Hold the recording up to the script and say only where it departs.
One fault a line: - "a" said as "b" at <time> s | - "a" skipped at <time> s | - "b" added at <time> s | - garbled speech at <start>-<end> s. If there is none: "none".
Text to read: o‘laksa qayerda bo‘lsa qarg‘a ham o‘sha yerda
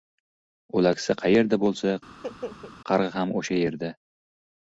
none